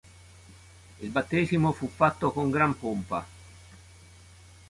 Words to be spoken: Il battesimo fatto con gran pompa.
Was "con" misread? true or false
false